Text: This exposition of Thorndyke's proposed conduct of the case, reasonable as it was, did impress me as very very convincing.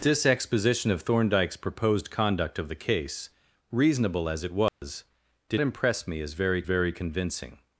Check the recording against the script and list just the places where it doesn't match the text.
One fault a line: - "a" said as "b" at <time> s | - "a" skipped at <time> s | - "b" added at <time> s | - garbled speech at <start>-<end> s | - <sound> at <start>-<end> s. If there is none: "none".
- dropout at 4.7-4.8 s